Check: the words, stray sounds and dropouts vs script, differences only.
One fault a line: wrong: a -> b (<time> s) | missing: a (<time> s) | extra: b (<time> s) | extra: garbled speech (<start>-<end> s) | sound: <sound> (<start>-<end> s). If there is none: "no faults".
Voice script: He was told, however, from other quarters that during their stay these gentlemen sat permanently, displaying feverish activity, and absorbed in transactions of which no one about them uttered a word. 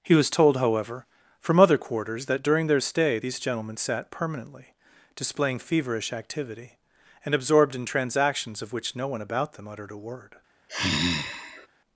sound: sigh (10.7-11.7 s)